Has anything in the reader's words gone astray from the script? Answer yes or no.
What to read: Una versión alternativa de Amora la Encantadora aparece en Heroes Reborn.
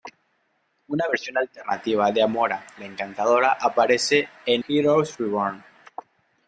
no